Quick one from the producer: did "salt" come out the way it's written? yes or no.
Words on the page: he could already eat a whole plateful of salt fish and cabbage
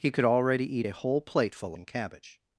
no